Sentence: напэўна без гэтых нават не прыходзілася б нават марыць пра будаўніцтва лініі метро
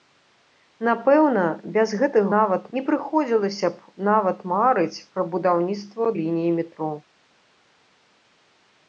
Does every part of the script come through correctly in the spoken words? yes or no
yes